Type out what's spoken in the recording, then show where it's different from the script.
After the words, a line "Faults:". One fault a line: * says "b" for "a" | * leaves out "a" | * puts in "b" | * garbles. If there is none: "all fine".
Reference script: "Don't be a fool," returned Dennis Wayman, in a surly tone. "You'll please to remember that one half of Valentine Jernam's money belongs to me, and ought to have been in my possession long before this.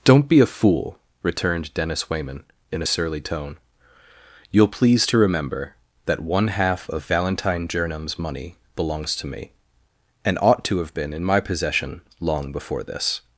"Don't be a fool," returned Dennis Wayman, in a surly tone. "You'll please to remember that one half of Valentine Jernam's money belongs to me, and ought to have been in my possession long before this.
Faults:
all fine